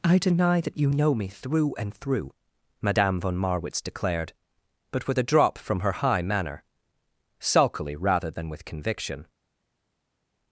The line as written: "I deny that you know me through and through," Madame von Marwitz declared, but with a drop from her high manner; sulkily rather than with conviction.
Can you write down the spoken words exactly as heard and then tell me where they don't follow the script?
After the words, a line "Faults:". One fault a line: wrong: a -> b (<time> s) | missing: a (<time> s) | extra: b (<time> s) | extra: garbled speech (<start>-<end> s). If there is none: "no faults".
"I deny that you know me through and through," Madame von Marwitz declared, but with a drop from her high manner; sulkily rather than with conviction.
Faults:
no faults